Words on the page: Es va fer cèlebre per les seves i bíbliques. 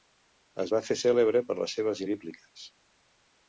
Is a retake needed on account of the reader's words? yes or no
no